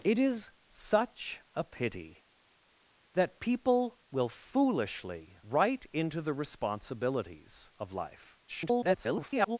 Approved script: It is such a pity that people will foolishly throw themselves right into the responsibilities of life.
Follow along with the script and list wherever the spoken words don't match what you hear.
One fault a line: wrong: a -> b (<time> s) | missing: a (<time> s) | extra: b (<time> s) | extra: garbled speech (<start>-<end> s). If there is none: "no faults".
missing: throw themselves (5.4 s)
extra: garbled speech (8.5-9.6 s)